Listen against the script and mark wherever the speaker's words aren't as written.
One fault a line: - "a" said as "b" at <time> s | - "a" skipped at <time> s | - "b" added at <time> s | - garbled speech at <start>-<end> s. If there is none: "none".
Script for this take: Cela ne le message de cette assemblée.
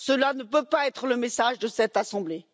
- "peut pas être" added at 0.4 s